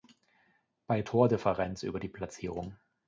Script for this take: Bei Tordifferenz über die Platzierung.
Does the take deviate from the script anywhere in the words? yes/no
no